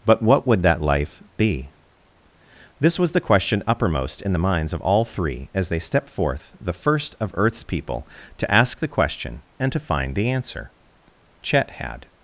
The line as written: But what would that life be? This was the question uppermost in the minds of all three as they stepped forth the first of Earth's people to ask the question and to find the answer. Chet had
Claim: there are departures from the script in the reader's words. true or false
false